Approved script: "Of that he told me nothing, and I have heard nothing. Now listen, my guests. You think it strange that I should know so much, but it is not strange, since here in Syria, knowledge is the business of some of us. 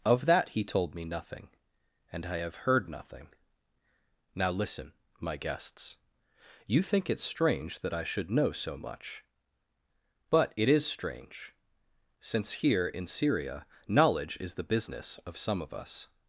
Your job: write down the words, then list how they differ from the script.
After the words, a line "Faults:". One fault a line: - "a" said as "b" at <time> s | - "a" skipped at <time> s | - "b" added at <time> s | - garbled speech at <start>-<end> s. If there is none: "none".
"Of that he told me nothing, and I have heard nothing. Now listen, my guests. You think it strange that I should know so much, but it is strange, since here in Syria, knowledge is the business of some of us.
Faults:
- "not" skipped at 10.8 s